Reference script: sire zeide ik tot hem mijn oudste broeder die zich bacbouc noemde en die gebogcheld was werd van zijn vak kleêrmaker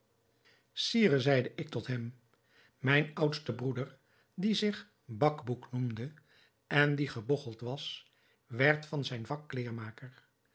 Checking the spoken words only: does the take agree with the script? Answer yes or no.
yes